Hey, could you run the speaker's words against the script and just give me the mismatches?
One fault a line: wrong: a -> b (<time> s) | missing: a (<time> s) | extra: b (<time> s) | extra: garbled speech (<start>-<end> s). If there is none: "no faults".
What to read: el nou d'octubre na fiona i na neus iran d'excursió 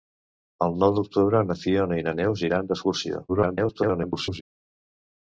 extra: garbled speech (3.3-4.4 s)